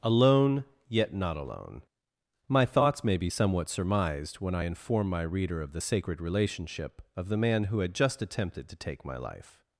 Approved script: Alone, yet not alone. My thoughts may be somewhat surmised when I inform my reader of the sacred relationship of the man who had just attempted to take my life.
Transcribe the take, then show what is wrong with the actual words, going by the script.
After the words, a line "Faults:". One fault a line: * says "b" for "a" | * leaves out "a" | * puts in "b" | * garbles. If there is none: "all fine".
Alone, yet not alone. My thoughts may be somewhat surmised when I inform my reader of the sacred relationship of the man who had just attempted to take my life.
Faults:
all fine